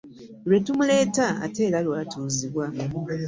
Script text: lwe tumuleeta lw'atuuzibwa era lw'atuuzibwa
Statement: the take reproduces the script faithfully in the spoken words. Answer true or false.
false